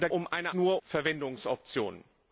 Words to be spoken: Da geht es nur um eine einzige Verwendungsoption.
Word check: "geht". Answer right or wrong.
wrong